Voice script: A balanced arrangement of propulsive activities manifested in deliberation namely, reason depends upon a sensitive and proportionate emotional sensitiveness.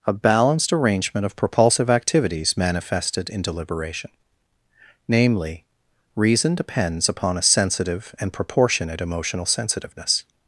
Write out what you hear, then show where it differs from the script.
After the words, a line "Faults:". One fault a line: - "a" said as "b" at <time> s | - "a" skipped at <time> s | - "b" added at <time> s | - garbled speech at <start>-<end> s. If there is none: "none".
A balanced arrangement of propulsive activities manifested in deliberation namely, reason depends upon a sensitive and proportionate emotional sensitiveness.
Faults:
none